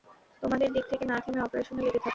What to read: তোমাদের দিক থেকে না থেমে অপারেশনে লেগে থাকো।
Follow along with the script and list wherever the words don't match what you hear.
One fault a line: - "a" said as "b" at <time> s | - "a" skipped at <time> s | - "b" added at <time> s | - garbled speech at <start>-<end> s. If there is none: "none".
none